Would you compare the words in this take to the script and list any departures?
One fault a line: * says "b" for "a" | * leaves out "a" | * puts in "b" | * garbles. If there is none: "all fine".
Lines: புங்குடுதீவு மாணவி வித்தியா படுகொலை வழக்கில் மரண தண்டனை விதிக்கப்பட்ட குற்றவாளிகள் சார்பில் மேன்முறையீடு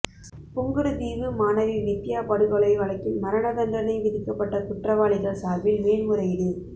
all fine